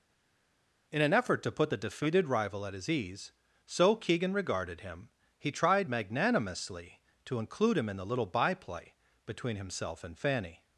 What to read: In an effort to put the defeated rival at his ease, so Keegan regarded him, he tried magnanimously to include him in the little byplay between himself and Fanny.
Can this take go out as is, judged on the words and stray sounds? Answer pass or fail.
pass